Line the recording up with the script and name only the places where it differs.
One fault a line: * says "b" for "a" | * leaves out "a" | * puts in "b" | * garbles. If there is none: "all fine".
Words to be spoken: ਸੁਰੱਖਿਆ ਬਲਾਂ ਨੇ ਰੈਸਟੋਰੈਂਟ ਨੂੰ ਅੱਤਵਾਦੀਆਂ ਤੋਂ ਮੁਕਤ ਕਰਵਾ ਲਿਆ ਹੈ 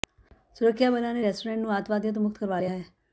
all fine